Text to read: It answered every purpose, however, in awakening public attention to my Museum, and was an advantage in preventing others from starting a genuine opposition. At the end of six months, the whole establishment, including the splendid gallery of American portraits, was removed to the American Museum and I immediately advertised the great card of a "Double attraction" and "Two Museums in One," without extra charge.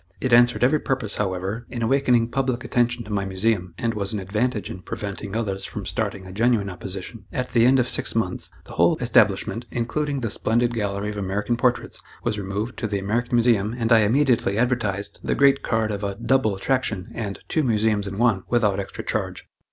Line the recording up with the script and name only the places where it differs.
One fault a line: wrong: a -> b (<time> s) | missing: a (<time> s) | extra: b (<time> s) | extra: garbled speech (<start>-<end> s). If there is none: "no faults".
no faults